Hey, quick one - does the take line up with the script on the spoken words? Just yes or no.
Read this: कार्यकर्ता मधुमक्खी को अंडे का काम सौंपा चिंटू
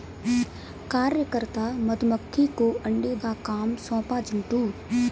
yes